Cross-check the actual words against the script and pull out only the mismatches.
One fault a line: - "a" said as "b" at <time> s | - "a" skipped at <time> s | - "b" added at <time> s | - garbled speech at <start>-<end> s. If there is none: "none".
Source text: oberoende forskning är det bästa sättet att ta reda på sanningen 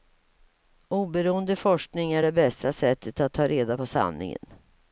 none